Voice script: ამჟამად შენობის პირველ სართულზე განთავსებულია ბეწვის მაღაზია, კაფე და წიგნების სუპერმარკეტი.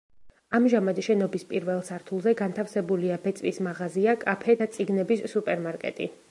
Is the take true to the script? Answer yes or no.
yes